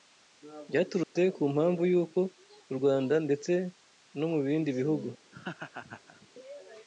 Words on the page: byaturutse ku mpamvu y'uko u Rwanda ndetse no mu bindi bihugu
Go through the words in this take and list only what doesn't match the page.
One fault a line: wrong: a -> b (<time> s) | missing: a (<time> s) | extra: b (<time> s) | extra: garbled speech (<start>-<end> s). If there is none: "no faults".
no faults